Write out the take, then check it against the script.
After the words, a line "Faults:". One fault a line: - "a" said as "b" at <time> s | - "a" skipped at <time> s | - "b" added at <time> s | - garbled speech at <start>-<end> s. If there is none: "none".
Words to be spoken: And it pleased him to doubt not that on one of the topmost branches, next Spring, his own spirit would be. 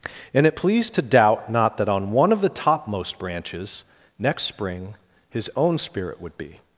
And it pleased to doubt not that on one of the topmost branches, next Spring, his own spirit would be.
Faults:
- "him" skipped at 0.9 s